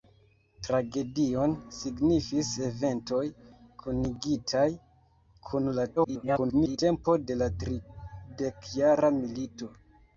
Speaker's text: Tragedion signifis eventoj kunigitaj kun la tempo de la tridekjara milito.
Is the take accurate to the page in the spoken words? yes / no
no